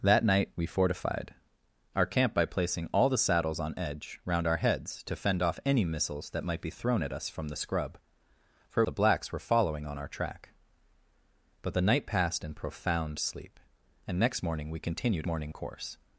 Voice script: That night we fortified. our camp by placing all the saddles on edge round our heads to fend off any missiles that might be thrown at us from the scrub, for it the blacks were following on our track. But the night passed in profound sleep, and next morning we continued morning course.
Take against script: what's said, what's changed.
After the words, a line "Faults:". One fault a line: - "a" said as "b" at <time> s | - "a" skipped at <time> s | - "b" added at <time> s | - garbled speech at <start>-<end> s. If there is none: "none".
That night we fortified. our camp by placing all the saddles on edge round our heads to fend off any missiles that might be thrown at us from the scrub, for it the blacks were following on our track. But the night passed in profound sleep, and next morning we continued morning course.
Faults:
none